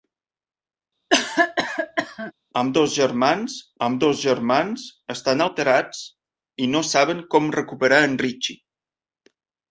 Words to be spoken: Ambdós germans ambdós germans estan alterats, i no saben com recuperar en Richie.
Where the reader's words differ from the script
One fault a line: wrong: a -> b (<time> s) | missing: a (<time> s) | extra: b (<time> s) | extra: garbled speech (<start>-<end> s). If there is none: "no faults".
no faults